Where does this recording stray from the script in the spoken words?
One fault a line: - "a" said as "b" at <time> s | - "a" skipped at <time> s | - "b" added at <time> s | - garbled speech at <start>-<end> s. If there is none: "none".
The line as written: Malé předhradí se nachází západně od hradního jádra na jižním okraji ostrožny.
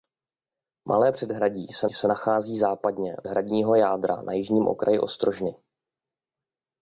- "se" added at 1.9 s
- "od" skipped at 3.2 s